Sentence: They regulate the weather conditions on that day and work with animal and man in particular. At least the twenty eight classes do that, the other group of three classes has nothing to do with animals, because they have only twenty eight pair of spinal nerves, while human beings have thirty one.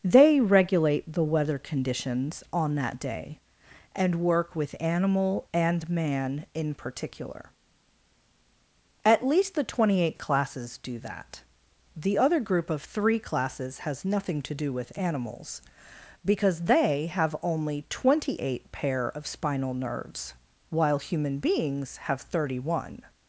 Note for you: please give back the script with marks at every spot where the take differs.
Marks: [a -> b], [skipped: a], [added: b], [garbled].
They regulate the weather conditions on that day and work with animal and man in particular. At least the twenty eight classes do that, the other group of three classes has nothing to do with animals, because they have only twenty eight pair of spinal nerves, while human beings have thirty one.